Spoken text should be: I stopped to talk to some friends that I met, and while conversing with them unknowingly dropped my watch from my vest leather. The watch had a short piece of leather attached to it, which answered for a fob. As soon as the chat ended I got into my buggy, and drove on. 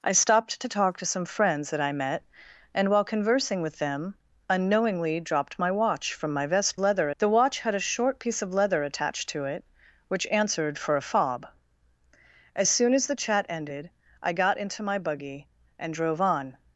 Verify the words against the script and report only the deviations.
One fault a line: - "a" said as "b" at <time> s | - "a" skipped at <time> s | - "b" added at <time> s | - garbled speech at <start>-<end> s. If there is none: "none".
none